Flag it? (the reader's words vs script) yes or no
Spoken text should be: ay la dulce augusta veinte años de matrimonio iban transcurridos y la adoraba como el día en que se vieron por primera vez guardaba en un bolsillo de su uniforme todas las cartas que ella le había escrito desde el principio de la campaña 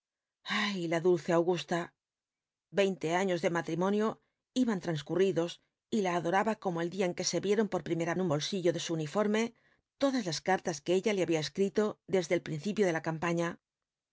yes